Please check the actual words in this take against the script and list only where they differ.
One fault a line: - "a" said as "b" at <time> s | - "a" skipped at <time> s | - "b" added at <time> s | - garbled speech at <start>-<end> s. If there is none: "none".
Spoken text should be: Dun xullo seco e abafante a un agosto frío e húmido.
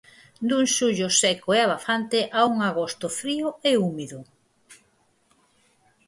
none